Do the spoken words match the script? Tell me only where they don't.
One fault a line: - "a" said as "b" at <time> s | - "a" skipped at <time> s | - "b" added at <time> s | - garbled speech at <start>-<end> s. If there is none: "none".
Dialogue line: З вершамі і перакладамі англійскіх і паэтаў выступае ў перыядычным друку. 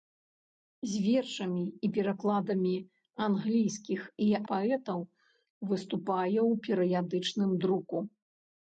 none